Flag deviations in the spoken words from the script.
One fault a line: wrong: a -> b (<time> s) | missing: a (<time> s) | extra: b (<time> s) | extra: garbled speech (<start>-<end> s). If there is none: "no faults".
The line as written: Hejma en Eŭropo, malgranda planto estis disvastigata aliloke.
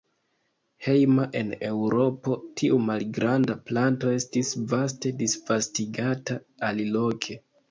extra: tiu (2.6 s)
extra: vaste (4.7 s)